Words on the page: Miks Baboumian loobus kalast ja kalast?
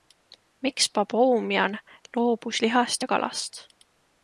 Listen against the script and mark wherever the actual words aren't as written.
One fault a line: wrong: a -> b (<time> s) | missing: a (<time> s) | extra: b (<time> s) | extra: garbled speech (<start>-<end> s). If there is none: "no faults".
wrong: kalast -> lihast (2.6 s)